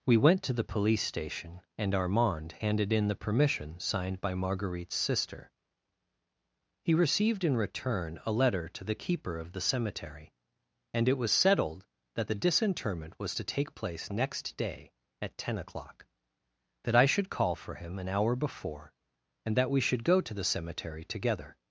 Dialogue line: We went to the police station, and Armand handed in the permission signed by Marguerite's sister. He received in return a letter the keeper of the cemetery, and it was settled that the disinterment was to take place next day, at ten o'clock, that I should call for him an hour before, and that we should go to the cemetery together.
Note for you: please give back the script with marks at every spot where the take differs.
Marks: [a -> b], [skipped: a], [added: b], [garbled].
We went to the police station, and Armand handed in the permission signed by Marguerite's sister. He received in return a letter [added: to] the keeper of the cemetery, and it was settled that the disinterment was to take place next day, at ten o'clock, that I should call for him an hour before, and that we should go to the cemetery together.